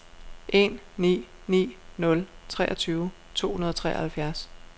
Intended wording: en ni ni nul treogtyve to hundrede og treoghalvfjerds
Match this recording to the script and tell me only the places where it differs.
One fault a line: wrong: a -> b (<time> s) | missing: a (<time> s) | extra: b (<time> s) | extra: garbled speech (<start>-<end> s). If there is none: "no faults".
no faults